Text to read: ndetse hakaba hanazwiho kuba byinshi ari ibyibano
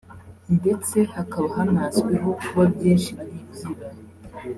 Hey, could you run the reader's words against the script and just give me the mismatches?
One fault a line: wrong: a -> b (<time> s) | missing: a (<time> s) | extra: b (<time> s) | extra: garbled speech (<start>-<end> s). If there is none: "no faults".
no faults